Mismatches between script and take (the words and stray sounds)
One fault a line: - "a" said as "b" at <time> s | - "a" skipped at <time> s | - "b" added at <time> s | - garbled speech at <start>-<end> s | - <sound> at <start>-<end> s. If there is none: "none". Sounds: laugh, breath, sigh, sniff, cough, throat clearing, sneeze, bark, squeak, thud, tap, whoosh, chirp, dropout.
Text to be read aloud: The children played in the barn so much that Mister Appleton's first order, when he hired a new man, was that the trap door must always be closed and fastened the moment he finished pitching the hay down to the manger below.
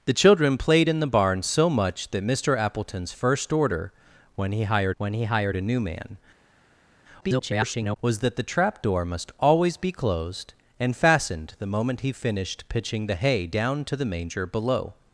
- "when he hired" added at 5.0 s
- garbled speech at 7.2-8.0 s